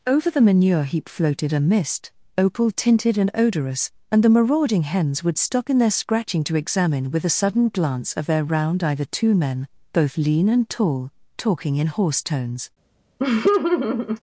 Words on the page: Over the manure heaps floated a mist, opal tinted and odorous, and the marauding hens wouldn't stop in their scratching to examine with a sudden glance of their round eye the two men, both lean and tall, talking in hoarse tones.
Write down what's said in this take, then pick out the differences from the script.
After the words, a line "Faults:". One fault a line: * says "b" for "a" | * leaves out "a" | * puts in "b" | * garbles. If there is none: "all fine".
Over the manure heap floated a mist, opal tinted and odorous, and the marauding hens would stop in their scratching to examine with a sudden glance of their round eye the two men, both lean and tall, talking in hoarse tones.
Faults:
* says "heap" for "heaps"
* says "would" for "wouldn't"